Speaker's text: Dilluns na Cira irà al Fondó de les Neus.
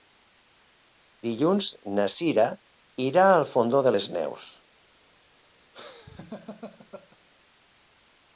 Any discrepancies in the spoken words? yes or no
no